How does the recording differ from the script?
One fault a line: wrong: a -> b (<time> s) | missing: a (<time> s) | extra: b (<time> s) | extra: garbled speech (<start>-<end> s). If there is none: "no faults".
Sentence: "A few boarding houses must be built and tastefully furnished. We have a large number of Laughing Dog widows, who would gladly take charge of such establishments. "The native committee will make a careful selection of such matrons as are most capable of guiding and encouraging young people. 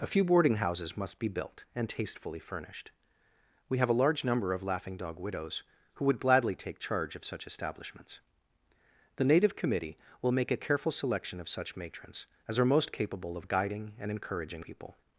missing: young (14.7 s)